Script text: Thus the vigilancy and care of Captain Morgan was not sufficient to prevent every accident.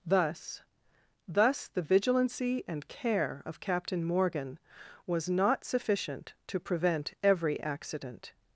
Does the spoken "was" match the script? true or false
true